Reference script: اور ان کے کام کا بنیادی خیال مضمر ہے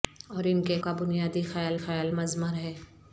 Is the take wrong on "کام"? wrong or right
wrong